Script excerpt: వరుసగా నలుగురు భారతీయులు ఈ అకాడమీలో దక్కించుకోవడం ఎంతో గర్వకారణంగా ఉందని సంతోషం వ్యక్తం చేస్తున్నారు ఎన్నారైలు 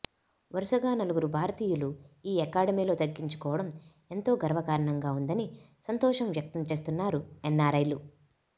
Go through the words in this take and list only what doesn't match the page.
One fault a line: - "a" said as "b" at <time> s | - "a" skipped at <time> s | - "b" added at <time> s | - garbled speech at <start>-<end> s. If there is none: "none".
none